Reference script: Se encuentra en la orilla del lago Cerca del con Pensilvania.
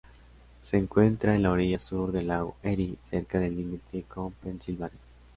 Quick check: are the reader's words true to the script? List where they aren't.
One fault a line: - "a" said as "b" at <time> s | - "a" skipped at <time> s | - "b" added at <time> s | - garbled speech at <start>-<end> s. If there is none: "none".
- "sur" added at 1.8 s
- "Erie" added at 2.6 s
- "límite" added at 3.6 s